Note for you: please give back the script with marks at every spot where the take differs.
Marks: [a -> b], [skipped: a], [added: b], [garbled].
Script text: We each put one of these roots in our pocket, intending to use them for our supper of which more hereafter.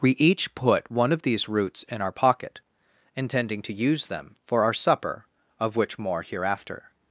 We each put one of these roots in our pocket, intending to use them for our supper of which more hereafter.